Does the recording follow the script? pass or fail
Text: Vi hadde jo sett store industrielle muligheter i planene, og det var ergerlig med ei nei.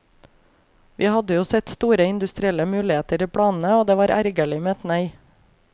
fail